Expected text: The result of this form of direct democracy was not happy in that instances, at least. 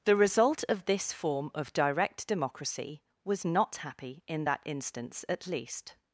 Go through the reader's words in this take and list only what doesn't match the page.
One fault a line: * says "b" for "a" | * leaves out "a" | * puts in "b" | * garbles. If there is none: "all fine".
* says "instance" for "instances"